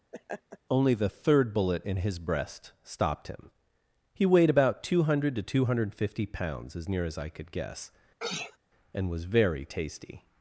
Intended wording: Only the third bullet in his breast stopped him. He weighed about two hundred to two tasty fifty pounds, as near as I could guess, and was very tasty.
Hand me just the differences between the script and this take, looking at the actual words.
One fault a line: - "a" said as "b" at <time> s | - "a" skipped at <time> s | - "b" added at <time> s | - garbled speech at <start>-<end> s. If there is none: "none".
- "tasty" said as "hundred" at 5.6 s